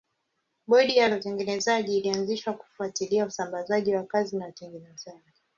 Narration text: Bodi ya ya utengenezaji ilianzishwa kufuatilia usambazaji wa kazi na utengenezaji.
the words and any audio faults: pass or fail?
pass